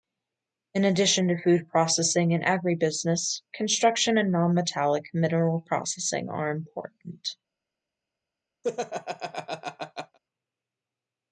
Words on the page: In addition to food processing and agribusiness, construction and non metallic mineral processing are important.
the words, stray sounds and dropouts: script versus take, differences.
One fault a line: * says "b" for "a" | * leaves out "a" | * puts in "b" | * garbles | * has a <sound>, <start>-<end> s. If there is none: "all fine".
* has a laugh, 8.6-10.2 s